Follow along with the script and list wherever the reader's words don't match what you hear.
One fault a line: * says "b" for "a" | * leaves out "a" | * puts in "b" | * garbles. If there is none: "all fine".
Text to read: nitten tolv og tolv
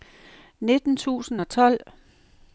* says "tusind" for "tolv"